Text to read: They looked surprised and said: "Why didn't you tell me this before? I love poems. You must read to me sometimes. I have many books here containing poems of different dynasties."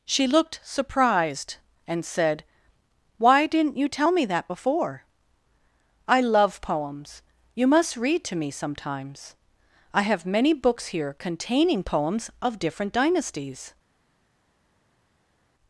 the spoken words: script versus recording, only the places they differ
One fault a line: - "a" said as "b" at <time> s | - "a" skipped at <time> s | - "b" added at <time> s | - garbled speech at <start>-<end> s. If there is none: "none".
- "They" said as "She" at 0.1 s
- "this" said as "that" at 4.2 s